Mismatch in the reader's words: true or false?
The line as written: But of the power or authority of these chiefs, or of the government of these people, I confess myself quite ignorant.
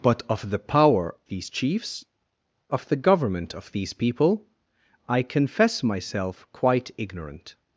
true